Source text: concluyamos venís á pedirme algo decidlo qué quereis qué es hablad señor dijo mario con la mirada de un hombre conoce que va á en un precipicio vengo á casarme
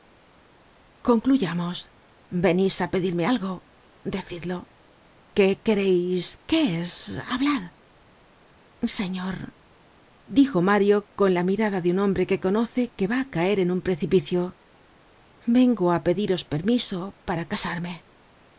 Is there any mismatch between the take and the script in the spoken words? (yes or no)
yes